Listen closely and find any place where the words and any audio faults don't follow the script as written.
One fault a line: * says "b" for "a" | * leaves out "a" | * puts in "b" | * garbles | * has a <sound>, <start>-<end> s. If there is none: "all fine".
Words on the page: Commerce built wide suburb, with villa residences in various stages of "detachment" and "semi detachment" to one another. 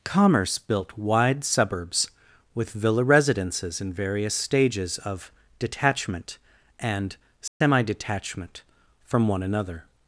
* says "suburbs" for "suburb"
* has a dropout, 7.5-7.6 s
* says "from" for "to"